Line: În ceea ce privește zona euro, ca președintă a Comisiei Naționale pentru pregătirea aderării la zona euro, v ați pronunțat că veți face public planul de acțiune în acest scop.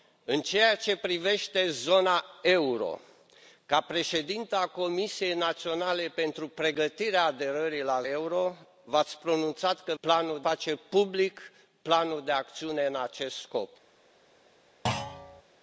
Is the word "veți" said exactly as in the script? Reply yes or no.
no